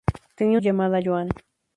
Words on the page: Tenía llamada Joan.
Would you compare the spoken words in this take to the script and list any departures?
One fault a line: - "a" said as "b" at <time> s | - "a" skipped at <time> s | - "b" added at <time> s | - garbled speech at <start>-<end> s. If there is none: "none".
none